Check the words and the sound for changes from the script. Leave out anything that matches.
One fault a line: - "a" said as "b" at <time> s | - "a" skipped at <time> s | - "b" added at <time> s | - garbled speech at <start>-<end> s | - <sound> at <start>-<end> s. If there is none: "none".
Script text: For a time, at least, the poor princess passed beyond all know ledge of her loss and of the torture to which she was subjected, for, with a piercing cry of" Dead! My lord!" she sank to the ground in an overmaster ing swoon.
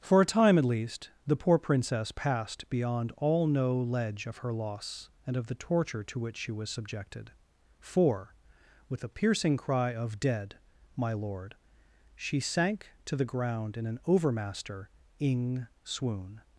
none